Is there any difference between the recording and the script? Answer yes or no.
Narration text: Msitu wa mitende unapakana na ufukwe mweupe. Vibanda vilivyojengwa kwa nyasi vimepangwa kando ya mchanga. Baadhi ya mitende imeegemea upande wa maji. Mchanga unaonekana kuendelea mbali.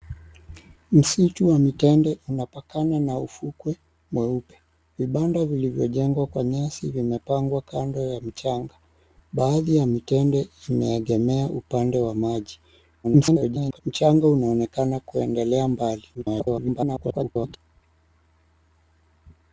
yes